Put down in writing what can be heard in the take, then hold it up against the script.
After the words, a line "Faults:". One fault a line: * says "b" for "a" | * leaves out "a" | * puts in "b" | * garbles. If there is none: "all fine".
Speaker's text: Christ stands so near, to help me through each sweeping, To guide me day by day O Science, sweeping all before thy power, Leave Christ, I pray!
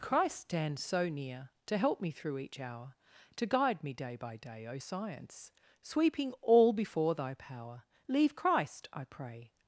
Christ stands so near, to help me through each hour, To guide me day by day O Science, sweeping all before thy power, Leave Christ, I pray!
Faults:
* says "hour" for "sweeping"